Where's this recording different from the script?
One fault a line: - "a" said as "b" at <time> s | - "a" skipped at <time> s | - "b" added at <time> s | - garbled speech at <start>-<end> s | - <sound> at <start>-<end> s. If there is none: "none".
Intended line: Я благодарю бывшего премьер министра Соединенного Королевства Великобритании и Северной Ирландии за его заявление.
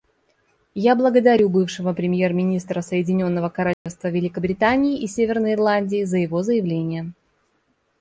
- dropout at 3.7-3.9 s